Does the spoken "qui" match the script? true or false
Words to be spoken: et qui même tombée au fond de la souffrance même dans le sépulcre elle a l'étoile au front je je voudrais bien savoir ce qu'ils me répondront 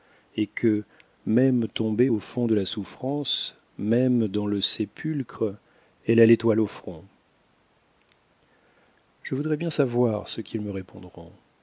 false